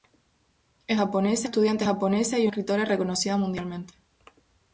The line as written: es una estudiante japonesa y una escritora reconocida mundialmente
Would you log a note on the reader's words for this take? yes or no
yes